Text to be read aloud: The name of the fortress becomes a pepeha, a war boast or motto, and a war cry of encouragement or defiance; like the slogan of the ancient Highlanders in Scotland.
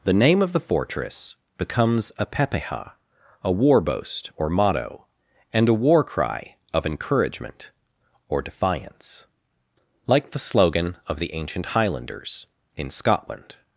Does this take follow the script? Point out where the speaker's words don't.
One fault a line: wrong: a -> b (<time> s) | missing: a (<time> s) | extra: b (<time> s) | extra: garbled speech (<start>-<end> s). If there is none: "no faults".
no faults